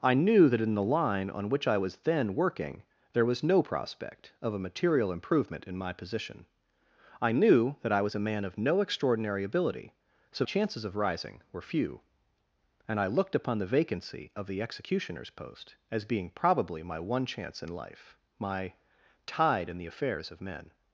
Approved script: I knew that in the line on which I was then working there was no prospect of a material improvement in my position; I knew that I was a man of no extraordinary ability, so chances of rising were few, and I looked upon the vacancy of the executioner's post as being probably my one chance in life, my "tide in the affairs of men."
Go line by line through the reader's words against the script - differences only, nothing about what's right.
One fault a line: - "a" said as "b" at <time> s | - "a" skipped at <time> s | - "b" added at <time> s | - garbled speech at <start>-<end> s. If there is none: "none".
none